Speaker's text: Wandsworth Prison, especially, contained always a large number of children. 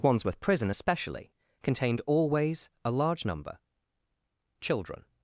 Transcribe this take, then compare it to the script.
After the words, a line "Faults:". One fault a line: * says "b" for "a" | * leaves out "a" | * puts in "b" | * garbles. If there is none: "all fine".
Wandsworth Prison, especially, contained always a large number children.
Faults:
* leaves out "of"